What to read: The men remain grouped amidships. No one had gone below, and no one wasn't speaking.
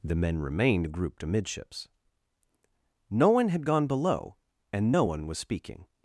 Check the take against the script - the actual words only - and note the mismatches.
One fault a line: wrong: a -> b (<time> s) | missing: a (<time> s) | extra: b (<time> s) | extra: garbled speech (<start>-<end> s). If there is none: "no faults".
wrong: remain -> remained (0.4 s)
wrong: wasn't -> was (5.3 s)